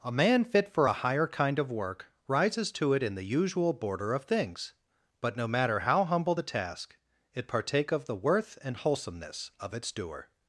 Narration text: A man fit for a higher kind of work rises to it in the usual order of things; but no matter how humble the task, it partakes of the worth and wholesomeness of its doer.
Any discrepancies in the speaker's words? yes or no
yes